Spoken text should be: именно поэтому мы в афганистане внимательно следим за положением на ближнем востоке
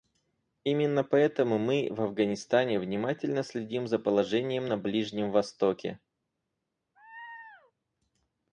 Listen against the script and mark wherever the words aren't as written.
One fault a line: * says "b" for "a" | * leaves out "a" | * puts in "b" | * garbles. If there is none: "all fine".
all fine